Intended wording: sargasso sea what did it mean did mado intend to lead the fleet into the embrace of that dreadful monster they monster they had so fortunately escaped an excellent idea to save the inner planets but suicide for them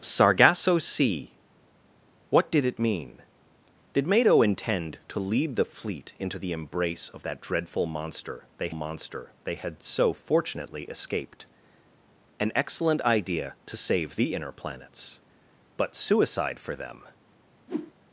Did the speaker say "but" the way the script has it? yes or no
yes